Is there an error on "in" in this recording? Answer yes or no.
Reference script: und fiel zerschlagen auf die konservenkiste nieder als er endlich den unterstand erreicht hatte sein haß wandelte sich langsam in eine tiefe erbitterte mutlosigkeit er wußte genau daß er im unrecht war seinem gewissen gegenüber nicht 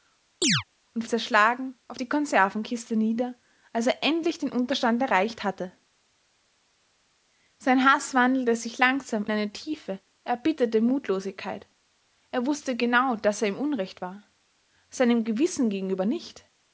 yes